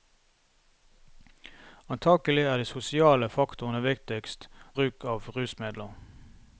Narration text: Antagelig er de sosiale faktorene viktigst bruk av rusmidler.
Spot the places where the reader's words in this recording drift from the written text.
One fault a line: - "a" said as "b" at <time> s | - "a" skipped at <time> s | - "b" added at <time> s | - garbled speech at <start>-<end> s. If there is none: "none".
none